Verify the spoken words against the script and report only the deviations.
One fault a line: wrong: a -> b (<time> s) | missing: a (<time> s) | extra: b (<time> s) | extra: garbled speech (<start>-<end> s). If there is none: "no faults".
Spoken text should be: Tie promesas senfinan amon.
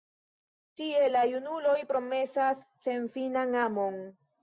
extra: la junuloj (1.1 s)